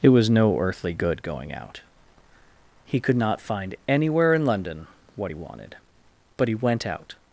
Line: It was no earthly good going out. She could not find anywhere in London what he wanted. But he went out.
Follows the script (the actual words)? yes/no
no